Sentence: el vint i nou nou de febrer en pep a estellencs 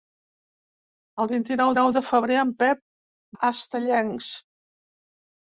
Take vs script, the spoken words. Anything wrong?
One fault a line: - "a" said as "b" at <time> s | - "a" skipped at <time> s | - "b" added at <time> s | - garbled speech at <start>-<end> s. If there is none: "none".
none